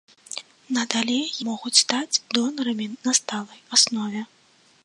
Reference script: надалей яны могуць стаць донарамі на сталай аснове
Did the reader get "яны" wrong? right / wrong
wrong